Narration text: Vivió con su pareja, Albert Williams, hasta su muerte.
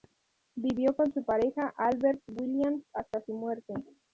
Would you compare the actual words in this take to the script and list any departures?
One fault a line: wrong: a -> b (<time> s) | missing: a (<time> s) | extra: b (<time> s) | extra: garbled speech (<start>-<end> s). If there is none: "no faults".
no faults